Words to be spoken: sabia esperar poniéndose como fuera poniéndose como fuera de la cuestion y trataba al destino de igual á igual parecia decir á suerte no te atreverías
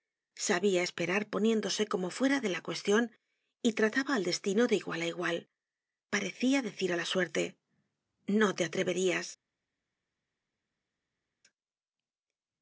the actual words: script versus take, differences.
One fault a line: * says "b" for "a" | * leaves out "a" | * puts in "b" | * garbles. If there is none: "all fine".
* leaves out "poniéndose como fuera"
* puts in "la"